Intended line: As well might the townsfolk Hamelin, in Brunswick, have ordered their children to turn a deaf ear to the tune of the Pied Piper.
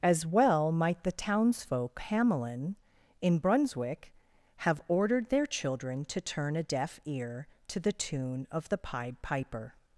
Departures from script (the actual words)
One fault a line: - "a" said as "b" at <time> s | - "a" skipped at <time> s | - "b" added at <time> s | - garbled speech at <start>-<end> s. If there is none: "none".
none